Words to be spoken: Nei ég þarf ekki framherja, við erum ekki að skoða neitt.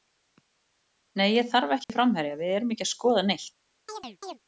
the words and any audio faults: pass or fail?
fail